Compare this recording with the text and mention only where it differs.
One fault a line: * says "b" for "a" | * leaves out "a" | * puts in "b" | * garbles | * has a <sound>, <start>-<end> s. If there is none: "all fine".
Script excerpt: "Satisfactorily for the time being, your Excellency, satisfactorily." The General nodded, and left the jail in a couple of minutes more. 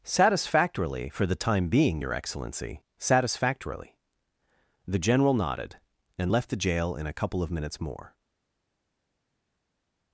all fine